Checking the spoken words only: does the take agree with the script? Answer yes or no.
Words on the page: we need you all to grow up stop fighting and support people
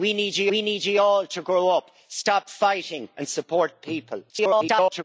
no